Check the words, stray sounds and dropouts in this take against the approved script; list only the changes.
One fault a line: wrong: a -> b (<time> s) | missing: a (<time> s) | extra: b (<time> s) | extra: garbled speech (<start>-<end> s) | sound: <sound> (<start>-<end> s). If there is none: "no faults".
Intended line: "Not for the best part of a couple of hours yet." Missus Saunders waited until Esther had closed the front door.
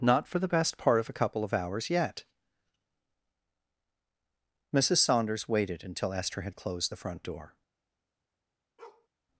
sound: bark (8.8-9.1 s)